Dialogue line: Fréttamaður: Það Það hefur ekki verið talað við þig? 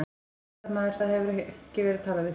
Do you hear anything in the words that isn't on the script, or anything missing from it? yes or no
yes